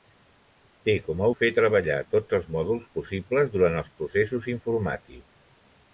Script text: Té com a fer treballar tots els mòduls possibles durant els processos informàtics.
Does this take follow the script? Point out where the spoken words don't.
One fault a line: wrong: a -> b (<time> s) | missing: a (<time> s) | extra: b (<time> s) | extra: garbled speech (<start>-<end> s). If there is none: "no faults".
no faults